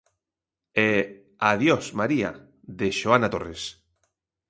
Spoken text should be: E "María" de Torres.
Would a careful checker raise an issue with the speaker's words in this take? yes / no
yes